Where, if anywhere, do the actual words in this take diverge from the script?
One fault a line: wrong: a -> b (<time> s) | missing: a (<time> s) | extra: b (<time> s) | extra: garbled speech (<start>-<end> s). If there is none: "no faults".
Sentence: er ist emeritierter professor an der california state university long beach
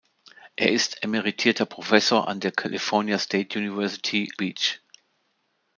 missing: long (4.3 s)